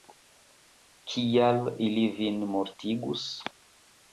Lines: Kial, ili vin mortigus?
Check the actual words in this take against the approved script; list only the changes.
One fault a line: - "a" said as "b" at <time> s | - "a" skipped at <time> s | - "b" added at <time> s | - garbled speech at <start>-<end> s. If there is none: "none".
none